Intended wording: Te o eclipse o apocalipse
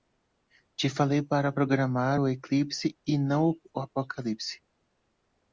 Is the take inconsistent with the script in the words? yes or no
yes